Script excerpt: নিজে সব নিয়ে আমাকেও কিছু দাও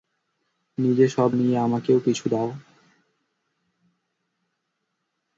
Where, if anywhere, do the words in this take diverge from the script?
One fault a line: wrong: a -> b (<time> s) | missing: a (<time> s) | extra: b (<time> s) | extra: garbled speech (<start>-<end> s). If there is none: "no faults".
no faults